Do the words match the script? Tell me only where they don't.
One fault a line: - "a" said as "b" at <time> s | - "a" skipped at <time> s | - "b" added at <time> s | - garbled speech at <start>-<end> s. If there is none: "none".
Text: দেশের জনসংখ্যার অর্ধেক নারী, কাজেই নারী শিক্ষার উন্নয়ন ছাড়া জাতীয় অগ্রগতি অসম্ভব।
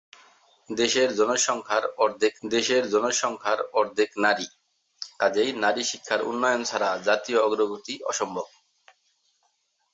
- "দেশের জনসংখ্যার অর্ধেক" added at 2.4 s